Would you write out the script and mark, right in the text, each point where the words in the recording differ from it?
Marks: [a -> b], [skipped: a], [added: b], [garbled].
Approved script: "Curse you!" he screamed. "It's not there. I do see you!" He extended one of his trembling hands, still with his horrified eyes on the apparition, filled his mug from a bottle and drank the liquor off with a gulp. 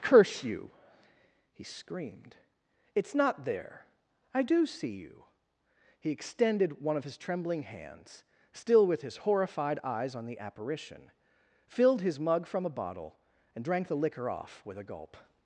"Curse you!" he screamed. "It's not there. I do see you!" He extended one of his trembling hands, still with his horrified eyes on the apparition, filled his mug from a bottle and drank the liquor off with a gulp.